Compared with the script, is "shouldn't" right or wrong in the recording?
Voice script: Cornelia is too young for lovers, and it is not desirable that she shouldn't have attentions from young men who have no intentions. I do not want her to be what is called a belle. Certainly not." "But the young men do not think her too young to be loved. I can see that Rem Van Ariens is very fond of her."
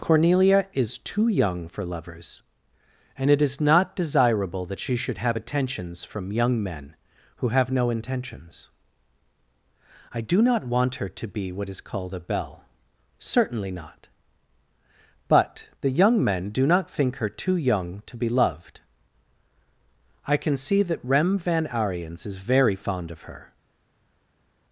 wrong